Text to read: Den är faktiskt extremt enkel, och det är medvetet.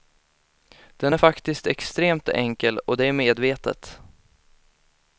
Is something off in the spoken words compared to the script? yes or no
no